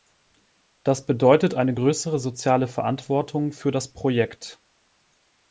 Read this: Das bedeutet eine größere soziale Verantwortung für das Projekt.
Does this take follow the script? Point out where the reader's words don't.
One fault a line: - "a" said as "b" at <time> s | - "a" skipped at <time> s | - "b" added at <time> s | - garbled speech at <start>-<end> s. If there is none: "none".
none